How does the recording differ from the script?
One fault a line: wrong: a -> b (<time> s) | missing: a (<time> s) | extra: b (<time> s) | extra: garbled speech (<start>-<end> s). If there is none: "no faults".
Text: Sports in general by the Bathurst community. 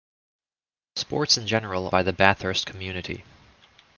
no faults